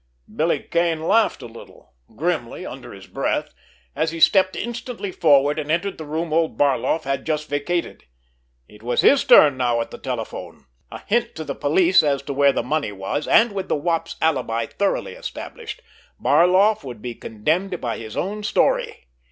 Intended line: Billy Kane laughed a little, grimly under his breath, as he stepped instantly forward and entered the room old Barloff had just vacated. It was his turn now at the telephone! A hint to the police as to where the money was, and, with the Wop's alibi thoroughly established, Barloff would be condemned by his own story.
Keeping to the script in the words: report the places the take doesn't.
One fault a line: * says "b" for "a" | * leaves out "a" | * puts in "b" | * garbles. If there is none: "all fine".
all fine